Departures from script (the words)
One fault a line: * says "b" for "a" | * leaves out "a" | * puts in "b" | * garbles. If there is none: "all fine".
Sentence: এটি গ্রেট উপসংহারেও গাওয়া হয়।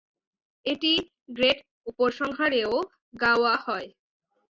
all fine